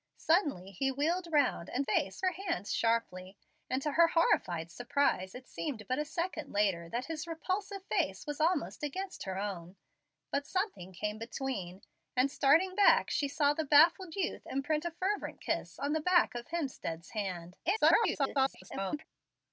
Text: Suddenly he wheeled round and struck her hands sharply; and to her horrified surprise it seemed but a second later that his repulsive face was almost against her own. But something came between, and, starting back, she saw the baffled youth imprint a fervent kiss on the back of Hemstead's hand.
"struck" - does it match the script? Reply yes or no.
no